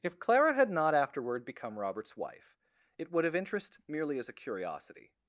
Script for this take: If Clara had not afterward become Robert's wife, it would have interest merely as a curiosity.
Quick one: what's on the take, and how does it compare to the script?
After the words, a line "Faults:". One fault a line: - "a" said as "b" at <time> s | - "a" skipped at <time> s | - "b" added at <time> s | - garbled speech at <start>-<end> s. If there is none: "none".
If Clara had not afterward become Robert's wife, it would have interest merely as a curiosity.
Faults:
none